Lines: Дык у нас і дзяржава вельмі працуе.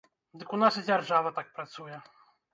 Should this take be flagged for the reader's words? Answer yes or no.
yes